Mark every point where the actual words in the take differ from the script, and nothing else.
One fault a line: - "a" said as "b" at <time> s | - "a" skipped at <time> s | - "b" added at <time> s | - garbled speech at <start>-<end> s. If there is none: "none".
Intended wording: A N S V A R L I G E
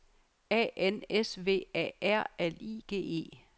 none